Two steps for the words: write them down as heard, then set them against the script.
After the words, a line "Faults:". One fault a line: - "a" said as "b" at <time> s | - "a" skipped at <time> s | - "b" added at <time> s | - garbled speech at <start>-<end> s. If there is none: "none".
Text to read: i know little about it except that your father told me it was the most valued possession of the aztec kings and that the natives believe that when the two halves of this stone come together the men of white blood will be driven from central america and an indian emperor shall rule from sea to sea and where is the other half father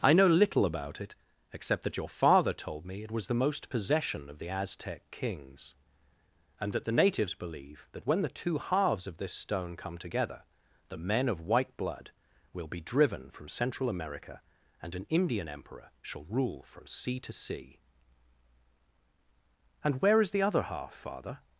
i know little about it except that your father told me it was the most possession of the aztec kings and that the natives believe that when the two halves of this stone come together the men of white blood will be driven from central america and an indian emperor shall rule from sea to sea and where is the other half father
Faults:
- "valued" skipped at 3.7 s